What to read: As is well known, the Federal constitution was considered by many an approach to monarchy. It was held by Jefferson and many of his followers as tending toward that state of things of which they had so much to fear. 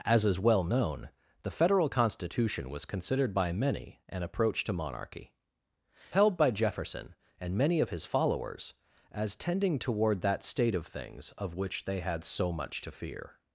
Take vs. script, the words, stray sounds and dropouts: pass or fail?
fail